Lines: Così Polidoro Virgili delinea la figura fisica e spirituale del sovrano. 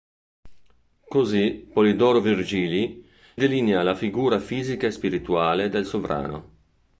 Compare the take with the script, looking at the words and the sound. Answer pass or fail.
pass